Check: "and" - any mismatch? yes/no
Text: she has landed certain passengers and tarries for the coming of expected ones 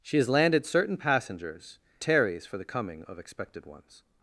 yes